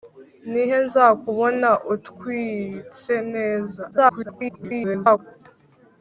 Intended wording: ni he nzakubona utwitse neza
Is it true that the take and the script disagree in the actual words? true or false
true